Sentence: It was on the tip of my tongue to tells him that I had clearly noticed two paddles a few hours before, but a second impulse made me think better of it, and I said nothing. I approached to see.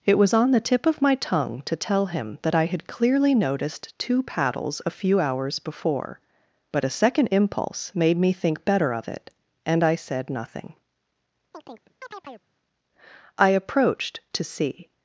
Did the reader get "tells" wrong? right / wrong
wrong